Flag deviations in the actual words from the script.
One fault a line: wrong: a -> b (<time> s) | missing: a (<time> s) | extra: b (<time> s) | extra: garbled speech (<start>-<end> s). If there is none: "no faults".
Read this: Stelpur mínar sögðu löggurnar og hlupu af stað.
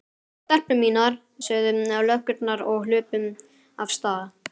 no faults